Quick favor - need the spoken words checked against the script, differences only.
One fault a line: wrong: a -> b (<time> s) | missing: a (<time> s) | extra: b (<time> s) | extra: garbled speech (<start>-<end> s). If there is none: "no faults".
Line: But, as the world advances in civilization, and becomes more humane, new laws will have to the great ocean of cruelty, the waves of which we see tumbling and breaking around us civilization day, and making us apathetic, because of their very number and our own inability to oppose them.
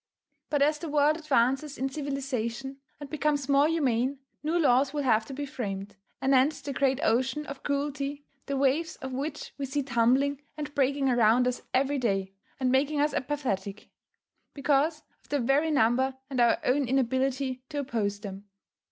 extra: be framed anent (5.3 s)
wrong: civilization -> every (11.7 s)